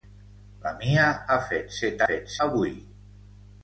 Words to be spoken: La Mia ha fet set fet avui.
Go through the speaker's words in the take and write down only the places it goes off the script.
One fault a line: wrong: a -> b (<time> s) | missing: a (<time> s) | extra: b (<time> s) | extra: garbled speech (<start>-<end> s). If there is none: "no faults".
no faults